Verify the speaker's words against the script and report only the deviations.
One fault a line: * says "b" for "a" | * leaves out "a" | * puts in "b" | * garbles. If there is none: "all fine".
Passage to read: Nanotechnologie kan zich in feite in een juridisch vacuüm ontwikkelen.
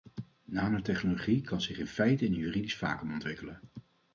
all fine